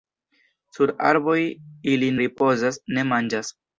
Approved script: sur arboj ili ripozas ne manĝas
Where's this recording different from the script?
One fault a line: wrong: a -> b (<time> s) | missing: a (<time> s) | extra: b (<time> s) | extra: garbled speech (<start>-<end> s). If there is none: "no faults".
no faults